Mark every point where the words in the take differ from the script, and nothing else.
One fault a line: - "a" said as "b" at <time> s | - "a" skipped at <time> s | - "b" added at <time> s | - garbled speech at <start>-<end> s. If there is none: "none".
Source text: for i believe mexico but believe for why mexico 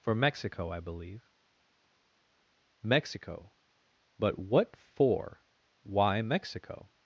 - "mexico" added at 0.1 s
- "believe" said as "what" at 4.4 s